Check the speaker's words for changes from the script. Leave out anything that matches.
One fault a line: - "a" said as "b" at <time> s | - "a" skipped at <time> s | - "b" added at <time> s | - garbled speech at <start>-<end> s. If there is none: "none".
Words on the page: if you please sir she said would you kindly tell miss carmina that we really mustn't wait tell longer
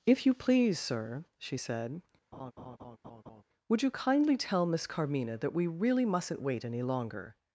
- "tell" said as "any" at 6.6 s